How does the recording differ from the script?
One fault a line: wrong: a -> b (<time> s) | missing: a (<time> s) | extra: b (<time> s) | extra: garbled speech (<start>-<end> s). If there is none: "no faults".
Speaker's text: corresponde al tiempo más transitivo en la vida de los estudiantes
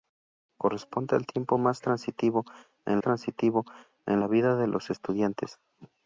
extra: transitivo en (3.0 s)